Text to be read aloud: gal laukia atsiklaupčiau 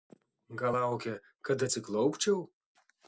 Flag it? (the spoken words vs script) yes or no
yes